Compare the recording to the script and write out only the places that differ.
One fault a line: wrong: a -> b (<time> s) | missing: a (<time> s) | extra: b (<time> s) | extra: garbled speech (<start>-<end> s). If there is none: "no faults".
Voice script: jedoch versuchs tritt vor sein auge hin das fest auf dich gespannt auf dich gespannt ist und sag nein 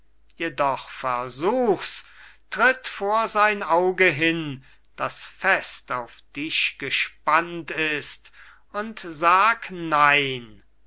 missing: auf dich gespannt (7.7 s)